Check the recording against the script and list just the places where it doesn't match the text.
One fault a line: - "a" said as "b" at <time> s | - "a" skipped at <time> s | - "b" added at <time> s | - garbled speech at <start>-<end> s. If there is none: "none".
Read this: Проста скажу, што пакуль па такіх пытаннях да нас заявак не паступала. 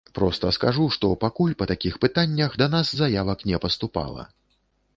none